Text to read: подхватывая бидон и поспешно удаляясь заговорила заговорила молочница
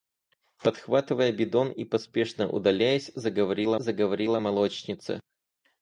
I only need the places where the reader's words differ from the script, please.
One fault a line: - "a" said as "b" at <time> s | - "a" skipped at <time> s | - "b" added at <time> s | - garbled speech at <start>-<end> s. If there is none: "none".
none